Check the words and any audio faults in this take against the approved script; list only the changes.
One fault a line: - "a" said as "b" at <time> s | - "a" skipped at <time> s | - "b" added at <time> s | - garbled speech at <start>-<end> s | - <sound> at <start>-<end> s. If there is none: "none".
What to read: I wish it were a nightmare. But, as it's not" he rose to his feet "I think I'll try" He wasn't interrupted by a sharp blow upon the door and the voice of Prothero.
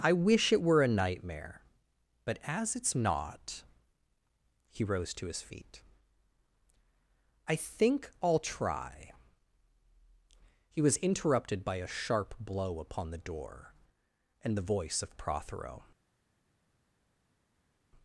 - "wasn't" said as "was" at 10.8 s